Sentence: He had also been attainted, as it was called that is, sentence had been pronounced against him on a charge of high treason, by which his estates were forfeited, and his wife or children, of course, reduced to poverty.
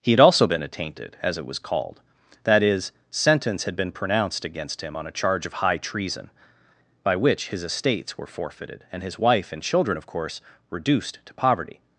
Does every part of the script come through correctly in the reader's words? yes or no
no